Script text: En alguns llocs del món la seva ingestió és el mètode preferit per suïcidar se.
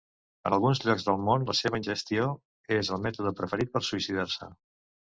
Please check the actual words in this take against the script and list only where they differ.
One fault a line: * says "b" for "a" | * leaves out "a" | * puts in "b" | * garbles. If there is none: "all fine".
all fine